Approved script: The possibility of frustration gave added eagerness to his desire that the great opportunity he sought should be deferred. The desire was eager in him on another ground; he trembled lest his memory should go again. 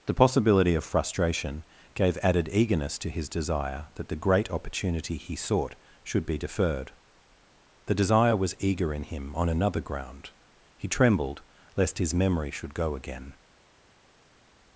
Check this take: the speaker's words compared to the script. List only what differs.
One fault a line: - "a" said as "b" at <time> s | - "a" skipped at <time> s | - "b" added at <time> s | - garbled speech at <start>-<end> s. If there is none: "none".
none